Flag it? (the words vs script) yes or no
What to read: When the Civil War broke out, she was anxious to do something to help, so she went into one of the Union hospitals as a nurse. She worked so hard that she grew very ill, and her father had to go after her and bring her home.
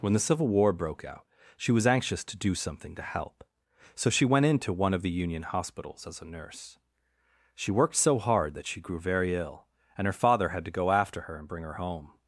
no